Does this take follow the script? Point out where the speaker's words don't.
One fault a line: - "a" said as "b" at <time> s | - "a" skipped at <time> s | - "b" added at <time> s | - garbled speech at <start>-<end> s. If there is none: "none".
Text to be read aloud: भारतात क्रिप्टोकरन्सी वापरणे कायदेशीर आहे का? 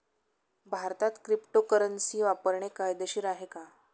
none